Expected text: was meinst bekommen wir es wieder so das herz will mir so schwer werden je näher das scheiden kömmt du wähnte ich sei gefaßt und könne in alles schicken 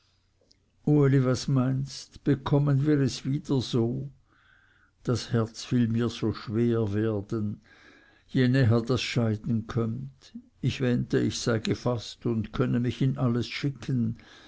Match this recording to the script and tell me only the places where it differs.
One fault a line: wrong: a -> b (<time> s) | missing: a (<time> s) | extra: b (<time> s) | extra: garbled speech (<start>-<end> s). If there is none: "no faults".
wrong: du -> ich (10.6 s)
extra: mich (12.8 s)